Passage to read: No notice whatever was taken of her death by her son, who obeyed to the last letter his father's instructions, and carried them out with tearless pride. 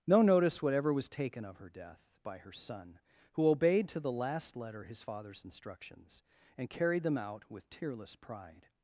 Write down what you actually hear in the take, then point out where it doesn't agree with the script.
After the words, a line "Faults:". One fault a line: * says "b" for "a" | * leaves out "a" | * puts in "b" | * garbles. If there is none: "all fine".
No notice whatever was taken of her death by her son, who obeyed to the last letter his father's instructions, and carried them out with tearless pride.
Faults:
all fine